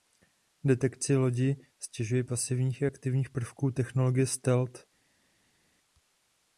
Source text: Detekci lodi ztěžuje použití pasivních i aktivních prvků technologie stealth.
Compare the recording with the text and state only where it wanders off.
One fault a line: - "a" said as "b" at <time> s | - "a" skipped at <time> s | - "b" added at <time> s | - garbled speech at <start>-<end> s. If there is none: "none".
- "použití" skipped at 2.2 s